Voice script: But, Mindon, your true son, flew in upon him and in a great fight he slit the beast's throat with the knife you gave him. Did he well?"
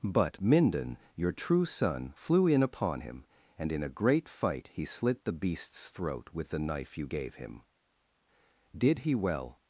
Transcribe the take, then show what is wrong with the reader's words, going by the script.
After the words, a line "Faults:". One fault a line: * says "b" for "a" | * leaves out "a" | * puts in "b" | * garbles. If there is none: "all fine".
But, Mindon, your true son, flew in upon him and in a great fight he slit the beast's throat with the knife you gave him. Did he well?"
Faults:
all fine